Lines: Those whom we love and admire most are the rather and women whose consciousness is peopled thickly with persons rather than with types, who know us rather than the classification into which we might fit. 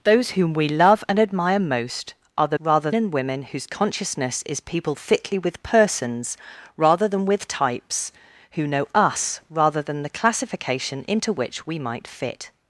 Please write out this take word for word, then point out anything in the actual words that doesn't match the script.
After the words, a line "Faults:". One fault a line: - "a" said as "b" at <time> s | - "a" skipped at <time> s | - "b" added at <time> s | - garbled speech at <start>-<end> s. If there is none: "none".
Those whom we love and admire most are the rather and women whose consciousness is peopled thickly with persons rather than with types, who know us rather than the classification into which we might fit.
Faults:
none